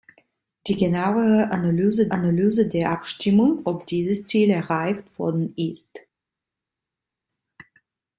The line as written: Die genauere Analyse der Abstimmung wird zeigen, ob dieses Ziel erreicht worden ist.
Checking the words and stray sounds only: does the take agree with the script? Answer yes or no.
no